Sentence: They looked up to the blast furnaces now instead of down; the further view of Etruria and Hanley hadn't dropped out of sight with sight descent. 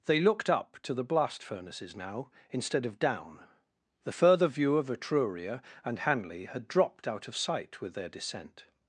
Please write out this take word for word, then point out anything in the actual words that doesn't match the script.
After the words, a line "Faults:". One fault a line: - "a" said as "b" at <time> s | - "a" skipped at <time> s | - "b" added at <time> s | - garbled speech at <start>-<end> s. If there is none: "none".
They looked up to the blast furnaces now instead of down; the further view of Etruria and Hanley had dropped out of sight with their descent.
Faults:
- "hadn't" said as "had" at 6.5 s
- "sight" said as "their" at 7.9 s